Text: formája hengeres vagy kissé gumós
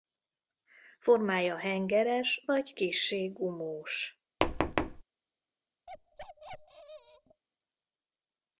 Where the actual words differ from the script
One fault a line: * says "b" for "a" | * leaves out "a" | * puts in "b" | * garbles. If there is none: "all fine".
all fine